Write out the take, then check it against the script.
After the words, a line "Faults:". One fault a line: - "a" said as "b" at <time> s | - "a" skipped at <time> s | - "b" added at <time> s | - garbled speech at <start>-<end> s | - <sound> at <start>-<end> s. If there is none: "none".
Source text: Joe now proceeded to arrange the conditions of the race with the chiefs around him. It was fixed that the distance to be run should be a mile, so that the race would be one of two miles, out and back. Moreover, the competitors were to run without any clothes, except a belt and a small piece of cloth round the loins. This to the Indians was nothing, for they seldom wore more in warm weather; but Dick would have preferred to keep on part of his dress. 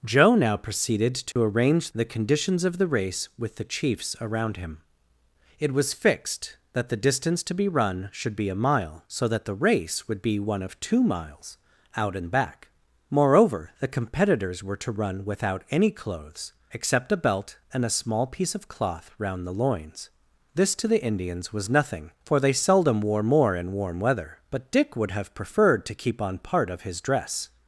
Joe now proceeded to arrange the conditions of the race with the chiefs around him. It was fixed that the distance to be run should be a mile, so that the race would be one of two miles, out and back. Moreover, the competitors were to run without any clothes, except a belt and a small piece of cloth round the loins. This to the Indians was nothing, for they seldom wore more in warm weather; but Dick would have preferred to keep on part of his dress.
Faults:
- dropout at 1.3-1.4 s